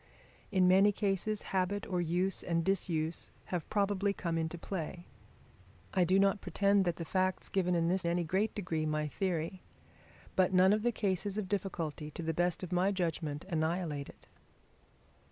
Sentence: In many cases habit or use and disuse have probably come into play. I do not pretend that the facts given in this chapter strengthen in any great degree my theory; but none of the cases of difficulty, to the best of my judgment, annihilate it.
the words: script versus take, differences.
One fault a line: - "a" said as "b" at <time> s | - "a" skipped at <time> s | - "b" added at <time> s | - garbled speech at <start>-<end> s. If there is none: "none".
- "chapter strengthen in" skipped at 8.0 s